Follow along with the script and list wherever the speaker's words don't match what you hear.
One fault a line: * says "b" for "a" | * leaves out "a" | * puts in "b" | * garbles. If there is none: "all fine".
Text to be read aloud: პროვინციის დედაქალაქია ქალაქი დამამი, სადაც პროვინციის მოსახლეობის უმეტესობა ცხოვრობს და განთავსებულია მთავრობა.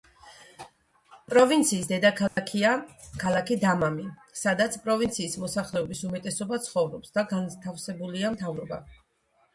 all fine